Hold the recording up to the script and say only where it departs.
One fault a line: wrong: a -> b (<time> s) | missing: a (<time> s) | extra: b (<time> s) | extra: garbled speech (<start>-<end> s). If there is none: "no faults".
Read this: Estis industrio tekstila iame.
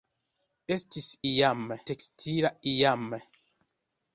wrong: industrio -> iame (1.3 s)